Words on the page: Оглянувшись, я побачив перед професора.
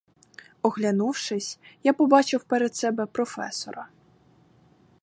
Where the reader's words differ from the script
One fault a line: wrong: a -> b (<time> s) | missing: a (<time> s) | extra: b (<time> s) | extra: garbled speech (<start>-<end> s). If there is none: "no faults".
extra: себе (2.8 s)